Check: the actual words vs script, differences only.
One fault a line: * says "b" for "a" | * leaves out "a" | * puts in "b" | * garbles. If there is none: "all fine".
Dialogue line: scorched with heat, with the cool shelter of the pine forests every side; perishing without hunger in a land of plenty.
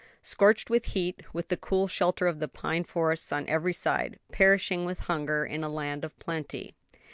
* puts in "on"
* says "with" for "without"